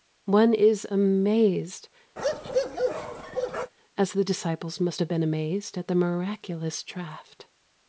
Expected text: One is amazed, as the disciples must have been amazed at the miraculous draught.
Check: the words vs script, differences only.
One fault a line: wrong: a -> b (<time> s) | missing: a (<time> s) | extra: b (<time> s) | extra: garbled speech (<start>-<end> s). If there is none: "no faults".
no faults